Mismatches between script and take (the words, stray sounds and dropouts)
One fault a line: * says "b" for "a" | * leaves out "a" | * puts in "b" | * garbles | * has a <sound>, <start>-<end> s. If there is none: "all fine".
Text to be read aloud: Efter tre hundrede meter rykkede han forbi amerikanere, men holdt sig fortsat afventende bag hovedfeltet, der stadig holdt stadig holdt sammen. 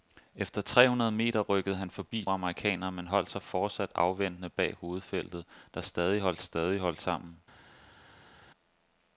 all fine